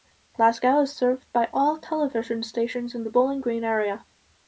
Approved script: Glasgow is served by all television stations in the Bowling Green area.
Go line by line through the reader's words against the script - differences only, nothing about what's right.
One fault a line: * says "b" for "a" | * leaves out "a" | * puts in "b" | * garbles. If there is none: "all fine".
all fine